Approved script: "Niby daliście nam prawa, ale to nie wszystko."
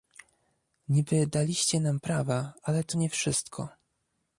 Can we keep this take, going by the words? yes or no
yes